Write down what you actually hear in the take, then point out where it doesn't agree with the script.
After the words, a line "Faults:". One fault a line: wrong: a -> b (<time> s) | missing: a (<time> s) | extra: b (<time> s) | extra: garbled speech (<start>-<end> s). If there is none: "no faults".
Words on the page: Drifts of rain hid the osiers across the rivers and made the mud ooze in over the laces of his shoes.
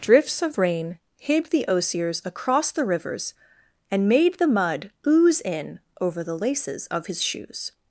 Drifts of rain hid the osiers across the rivers and made the mud ooze in over the laces of his shoes.
Faults:
no faults